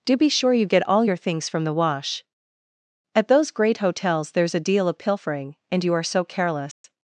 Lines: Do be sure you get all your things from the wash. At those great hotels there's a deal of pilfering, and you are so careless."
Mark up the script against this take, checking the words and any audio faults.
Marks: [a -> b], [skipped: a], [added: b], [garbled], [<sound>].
Do be sure you get all your things from the wash. At those great hotels there's a deal of pilfering, and you are so careless." [dropout]